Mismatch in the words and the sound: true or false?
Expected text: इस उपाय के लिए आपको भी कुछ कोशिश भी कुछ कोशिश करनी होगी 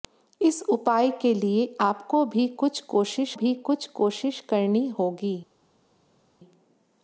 false